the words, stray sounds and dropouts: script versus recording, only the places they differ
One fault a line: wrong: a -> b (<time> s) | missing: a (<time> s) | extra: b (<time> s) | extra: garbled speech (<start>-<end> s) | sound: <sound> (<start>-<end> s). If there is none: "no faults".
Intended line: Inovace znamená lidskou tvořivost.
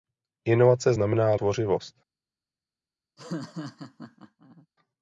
missing: lidskou (1.3 s)
sound: laugh (3.2-4.7 s)